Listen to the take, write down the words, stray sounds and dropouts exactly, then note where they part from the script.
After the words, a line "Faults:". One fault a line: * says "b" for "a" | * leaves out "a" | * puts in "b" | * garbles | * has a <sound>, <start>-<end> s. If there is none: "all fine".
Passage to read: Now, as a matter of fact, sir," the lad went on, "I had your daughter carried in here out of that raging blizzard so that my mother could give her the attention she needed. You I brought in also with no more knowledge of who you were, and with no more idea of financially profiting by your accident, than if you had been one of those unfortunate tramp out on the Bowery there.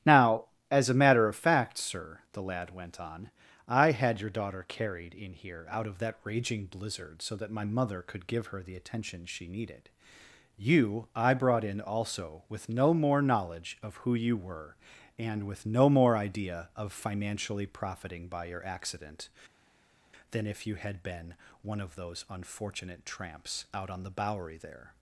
Now, as a matter of fact, sir," the lad went on, "I had your daughter carried in here out of that raging blizzard so that my mother could give her the attention she needed. You I brought in also with no more knowledge of who you were, and with no more idea of financially profiting by your accident, than if you had been one of those unfortunate tramps out on the Bowery there.
Faults:
* says "tramps" for "tramp"